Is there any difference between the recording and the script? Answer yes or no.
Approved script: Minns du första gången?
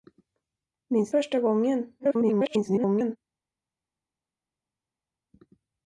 yes